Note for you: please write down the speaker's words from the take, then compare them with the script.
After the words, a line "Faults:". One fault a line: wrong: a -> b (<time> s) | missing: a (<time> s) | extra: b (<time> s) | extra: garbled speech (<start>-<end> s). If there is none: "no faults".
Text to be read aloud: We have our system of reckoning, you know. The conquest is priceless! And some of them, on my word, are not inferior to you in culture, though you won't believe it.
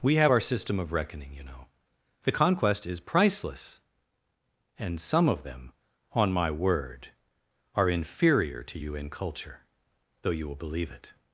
We have our system of reckoning, you know. The conquest is priceless! And some of them, on my word, are inferior to you in culture, though you will believe it.
Faults:
missing: not (7.9 s)
wrong: won't -> will (10.5 s)